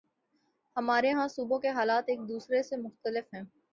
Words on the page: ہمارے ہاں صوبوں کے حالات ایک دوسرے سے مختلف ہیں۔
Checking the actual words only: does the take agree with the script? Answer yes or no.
yes